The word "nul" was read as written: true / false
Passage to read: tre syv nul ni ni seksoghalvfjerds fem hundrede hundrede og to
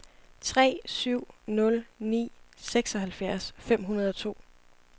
true